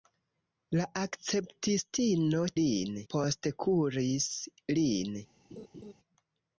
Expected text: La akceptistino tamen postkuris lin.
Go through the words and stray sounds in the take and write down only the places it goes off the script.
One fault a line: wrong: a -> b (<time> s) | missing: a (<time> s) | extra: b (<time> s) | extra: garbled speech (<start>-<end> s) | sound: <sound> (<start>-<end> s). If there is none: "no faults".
wrong: tamen -> lin (2.6 s)
sound: laugh (5.5-5.9 s)